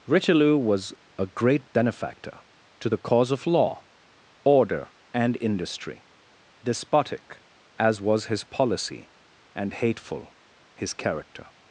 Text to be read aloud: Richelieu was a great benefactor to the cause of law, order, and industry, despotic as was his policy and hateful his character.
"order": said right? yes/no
yes